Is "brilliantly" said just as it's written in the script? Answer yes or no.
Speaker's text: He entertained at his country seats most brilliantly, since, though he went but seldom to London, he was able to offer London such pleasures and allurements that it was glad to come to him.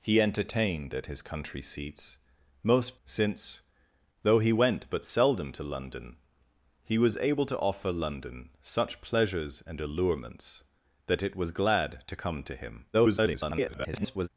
no